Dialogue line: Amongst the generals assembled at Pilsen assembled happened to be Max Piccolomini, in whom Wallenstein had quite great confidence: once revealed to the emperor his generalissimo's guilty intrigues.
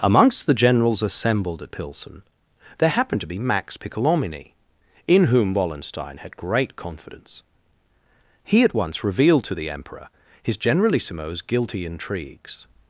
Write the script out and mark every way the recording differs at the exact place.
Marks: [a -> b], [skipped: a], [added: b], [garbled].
Amongst the generals assembled at Pilsen [assembled -> there] happened to be Max Piccolomini, in whom Wallenstein had [skipped: quite] great confidence: [added: he at] once revealed to the emperor his generalissimo's guilty intrigues.